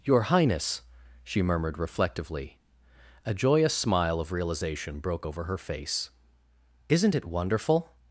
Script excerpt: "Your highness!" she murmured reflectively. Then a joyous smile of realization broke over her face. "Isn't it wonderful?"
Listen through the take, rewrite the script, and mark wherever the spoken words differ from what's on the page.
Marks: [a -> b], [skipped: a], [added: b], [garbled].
"Your highness!" she murmured reflectively. [skipped: Then] a joyous smile of realization broke over her face. "Isn't it wonderful?"